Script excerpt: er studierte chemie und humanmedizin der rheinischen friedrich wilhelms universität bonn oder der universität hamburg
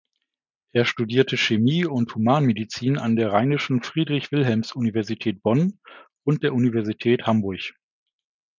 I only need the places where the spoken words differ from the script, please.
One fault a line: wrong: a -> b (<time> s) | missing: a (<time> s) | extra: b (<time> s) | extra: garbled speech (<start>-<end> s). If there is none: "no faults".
extra: an (3.0 s)
wrong: oder -> und (6.2 s)